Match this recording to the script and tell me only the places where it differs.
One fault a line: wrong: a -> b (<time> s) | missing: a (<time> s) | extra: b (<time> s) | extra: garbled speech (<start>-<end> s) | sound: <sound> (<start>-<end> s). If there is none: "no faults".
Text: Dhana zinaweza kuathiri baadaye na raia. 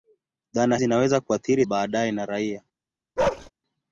sound: bark (3.2-3.5 s)